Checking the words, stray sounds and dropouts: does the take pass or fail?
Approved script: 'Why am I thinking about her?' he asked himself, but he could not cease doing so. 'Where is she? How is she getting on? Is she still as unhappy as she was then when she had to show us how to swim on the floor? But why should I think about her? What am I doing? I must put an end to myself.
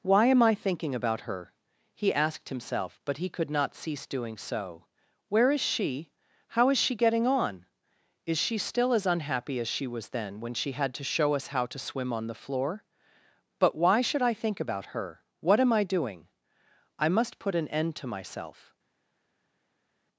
pass